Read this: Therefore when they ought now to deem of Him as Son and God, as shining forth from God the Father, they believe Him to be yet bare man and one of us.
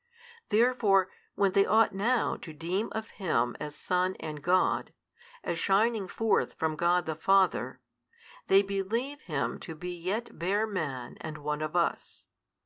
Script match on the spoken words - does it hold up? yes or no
yes